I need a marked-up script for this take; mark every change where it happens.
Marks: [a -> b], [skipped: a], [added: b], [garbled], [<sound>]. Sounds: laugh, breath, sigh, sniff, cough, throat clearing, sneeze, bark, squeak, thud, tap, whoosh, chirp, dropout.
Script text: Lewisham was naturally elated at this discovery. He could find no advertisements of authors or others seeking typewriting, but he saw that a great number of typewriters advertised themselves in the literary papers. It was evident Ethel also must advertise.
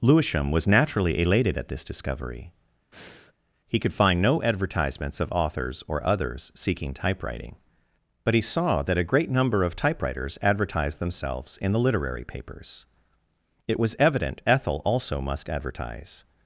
Lewisham was naturally elated at this discovery. [breath] He could find no advertisements of authors or others seeking typewriting, but he saw that a great number of typewriters advertised themselves in the literary papers. It was evident Ethel also must advertise.